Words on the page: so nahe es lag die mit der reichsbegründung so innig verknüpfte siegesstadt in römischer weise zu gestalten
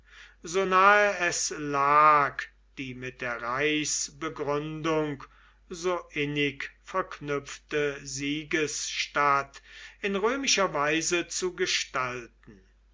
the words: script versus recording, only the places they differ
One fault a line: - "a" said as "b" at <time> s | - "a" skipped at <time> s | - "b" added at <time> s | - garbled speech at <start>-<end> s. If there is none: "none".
none